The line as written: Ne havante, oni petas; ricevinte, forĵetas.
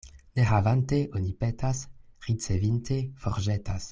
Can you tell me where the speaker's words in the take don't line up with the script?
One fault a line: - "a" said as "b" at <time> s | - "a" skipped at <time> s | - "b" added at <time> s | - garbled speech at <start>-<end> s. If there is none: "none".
none